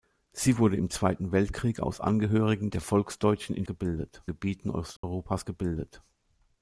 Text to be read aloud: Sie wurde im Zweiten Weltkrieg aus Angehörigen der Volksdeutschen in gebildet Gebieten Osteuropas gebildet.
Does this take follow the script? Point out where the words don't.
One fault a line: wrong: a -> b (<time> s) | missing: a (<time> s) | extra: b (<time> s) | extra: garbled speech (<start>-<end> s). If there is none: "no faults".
no faults